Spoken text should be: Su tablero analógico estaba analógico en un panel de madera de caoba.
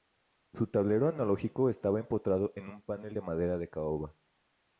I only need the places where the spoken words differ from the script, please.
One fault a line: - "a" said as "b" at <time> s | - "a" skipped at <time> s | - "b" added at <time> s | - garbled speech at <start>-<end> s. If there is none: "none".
- "analógico" said as "empotrado" at 2.0 s